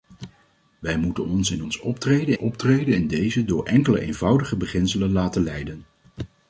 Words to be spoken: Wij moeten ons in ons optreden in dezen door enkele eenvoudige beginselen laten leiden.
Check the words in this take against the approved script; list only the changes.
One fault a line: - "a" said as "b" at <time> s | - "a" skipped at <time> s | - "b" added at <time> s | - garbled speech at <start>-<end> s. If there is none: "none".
- "optreden" added at 2.4 s